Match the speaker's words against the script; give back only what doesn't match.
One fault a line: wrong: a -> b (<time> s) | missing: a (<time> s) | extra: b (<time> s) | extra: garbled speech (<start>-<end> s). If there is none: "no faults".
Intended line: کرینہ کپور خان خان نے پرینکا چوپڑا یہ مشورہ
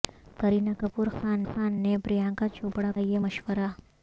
no faults